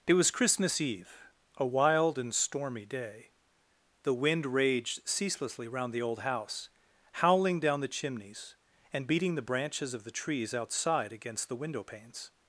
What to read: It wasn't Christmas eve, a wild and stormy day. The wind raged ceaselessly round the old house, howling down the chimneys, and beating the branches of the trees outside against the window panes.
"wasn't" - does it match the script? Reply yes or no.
no